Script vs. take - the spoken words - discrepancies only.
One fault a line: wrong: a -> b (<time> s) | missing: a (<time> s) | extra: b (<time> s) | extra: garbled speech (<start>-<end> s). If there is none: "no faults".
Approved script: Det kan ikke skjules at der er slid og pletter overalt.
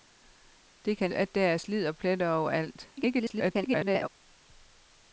missing: ikke skjules (1.1 s)
extra: garbled speech (3.0-4.1 s)